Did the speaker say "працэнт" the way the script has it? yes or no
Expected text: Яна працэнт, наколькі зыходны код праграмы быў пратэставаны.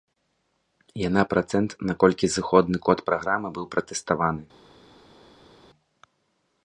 yes